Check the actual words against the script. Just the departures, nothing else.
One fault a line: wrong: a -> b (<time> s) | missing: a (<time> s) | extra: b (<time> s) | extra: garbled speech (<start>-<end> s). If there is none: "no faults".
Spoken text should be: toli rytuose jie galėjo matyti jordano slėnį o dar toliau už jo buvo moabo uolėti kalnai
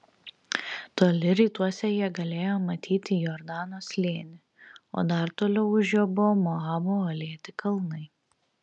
no faults